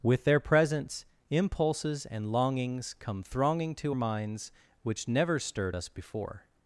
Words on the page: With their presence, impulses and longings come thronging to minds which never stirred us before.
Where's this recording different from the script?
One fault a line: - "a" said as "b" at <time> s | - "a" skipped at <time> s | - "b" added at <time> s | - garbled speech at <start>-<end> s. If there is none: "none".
none